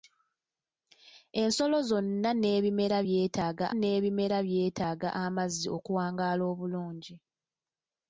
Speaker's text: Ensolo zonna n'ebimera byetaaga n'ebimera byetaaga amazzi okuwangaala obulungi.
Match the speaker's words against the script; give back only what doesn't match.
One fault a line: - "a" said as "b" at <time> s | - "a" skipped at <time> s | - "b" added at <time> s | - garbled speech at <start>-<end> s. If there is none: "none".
none